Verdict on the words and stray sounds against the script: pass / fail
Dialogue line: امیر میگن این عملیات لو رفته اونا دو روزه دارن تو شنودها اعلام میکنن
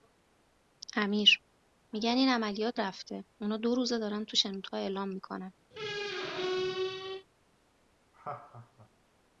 fail